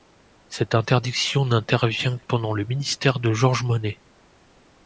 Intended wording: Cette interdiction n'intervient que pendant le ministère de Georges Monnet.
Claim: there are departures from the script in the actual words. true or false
true